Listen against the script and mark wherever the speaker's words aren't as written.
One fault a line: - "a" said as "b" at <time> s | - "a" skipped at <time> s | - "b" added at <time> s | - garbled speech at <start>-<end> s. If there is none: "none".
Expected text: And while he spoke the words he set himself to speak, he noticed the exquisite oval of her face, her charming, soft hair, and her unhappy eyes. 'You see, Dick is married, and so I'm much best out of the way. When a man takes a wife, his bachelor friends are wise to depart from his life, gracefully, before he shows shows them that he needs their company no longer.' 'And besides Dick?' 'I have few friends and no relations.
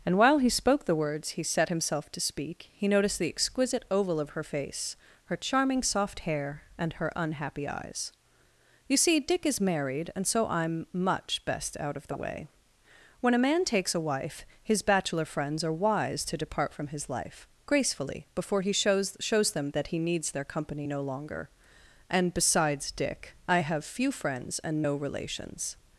none